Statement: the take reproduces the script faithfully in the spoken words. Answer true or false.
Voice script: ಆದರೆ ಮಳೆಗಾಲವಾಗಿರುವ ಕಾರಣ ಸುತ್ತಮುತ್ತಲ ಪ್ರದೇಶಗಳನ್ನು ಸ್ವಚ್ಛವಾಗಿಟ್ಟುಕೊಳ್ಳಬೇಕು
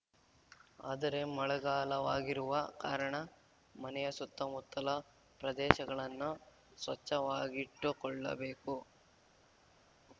false